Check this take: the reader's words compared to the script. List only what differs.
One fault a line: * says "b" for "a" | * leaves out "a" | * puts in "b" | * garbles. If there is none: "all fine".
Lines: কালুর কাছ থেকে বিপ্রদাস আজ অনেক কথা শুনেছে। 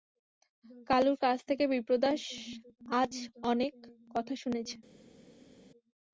all fine